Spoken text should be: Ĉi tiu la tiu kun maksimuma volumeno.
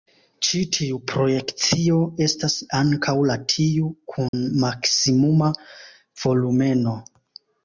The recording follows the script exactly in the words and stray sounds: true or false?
false